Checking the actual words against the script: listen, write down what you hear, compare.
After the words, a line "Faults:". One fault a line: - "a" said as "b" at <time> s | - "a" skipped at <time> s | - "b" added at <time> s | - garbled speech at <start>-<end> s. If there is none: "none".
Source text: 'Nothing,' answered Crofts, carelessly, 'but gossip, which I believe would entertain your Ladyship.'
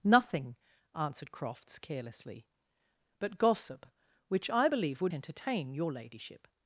'Nothing,' answered Crofts, carelessly, 'but gossip, which I believe would entertain your Ladyship.'
Faults:
none